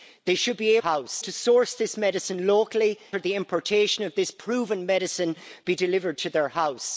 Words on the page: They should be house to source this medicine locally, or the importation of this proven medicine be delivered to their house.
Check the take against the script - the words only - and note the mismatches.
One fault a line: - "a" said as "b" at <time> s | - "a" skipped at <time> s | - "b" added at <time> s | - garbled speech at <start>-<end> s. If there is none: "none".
none